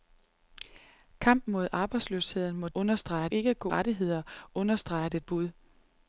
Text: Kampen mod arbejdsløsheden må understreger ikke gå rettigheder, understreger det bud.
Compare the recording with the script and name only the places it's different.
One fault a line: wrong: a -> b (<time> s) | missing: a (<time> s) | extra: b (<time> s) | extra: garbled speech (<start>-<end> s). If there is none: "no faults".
no faults